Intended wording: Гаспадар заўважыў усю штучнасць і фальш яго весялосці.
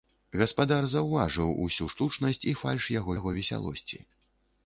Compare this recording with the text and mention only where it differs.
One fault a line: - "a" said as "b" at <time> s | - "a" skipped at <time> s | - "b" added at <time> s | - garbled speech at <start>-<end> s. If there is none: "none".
- "яго" added at 3.2 s